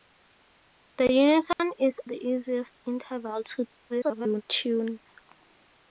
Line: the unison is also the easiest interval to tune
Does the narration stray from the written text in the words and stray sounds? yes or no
yes